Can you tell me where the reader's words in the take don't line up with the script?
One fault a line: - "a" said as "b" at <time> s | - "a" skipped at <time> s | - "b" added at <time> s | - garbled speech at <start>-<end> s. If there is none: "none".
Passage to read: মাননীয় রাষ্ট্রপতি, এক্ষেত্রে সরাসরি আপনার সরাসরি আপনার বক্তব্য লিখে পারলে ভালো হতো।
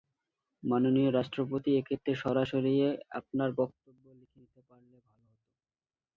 - "সরাসরি আপনার" skipped at 3.5 s
- "নিতে" added at 4.4 s